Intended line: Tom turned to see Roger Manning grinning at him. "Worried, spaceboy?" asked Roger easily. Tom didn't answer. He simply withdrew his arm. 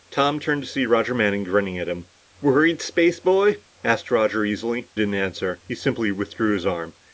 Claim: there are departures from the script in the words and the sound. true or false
true